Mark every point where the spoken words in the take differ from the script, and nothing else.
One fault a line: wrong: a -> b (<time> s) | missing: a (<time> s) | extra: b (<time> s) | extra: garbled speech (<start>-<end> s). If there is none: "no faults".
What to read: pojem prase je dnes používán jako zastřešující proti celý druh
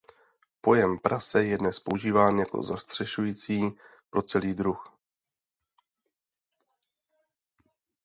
wrong: proti -> pro (4.1 s)